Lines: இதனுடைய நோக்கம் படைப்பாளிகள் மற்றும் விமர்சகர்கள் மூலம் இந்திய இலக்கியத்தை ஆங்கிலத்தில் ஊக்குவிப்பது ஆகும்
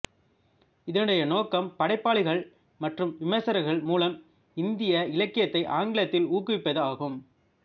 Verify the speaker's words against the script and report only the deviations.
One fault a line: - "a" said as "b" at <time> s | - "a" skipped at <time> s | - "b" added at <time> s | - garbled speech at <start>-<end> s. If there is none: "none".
none